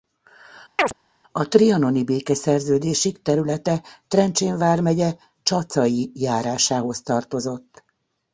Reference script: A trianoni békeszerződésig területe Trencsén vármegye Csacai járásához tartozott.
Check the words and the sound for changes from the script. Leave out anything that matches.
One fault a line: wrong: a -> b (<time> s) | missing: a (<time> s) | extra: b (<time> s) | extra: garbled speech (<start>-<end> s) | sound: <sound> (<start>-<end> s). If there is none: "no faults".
sound: chirp (0.8-0.9 s)